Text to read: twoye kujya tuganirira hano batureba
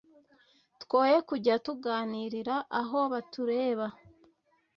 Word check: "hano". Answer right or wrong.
wrong